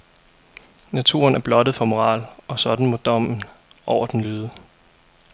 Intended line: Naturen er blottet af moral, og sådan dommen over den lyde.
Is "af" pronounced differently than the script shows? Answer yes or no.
yes